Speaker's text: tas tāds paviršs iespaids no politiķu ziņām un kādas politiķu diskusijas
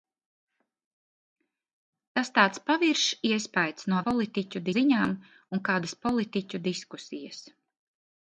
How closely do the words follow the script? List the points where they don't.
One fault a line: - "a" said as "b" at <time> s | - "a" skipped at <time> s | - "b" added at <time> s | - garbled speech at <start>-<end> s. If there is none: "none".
none